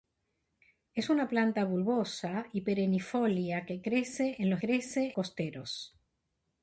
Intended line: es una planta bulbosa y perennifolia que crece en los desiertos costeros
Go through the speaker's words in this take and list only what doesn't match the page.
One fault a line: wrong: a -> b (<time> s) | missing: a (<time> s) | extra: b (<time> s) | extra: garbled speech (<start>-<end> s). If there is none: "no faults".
wrong: desiertos -> crece (4.6 s)